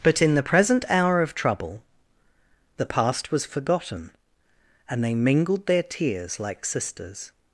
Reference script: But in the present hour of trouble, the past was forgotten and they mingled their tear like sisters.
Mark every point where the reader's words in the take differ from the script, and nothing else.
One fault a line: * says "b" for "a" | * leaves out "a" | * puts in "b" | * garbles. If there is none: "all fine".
* says "tears" for "tear"